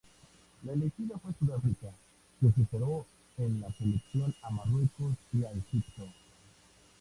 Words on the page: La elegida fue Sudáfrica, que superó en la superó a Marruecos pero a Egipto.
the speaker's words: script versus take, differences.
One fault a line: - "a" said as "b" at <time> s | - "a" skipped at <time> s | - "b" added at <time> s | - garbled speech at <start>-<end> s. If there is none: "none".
- "superó" said as "selección" at 3.7 s
- "pero" said as "y" at 5.3 s